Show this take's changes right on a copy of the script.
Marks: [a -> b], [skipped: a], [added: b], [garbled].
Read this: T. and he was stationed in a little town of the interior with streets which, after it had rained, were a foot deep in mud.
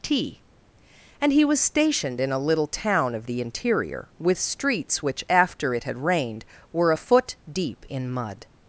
T. and he was stationed in a little town of the interior with streets which, after it had rained, were a foot deep in mud.